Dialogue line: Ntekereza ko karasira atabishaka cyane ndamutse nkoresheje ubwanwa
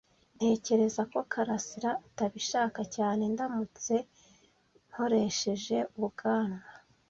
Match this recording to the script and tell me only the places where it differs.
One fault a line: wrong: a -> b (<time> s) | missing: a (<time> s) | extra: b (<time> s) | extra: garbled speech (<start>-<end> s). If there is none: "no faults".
no faults